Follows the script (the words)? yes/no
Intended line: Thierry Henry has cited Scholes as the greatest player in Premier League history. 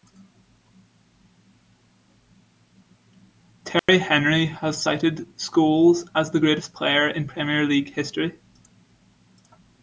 yes